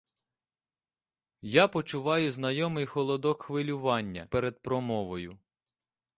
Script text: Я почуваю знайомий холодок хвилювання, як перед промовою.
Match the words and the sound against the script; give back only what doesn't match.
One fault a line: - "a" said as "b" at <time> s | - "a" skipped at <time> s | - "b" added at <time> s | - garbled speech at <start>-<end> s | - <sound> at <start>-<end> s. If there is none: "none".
- "як" skipped at 4.3 s